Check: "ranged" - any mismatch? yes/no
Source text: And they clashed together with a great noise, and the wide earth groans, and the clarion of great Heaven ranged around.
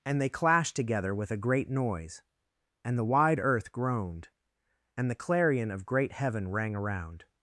yes